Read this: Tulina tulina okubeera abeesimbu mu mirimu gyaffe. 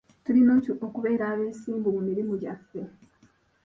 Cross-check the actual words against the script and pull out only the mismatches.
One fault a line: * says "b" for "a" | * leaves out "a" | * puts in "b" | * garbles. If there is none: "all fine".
* leaves out "tulina"